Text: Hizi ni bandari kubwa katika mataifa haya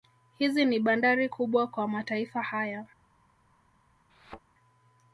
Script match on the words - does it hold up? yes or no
no